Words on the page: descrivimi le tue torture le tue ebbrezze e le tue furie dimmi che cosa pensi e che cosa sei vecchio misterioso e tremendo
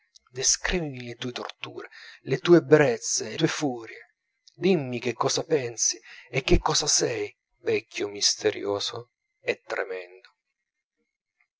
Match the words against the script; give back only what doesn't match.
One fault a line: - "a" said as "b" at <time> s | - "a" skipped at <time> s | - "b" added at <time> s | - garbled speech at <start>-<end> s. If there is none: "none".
- "le" skipped at 3.4 s